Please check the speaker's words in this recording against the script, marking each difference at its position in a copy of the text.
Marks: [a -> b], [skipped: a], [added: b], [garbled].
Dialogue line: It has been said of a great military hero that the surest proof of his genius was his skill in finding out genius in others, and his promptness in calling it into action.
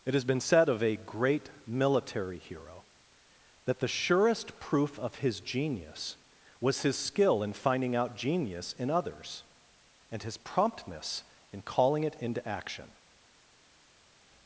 It has been said of a great military hero that the surest proof of his genius was his skill in finding out genius in others, and his promptness in calling it into action.